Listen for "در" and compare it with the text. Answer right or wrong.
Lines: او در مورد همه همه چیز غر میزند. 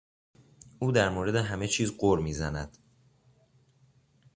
right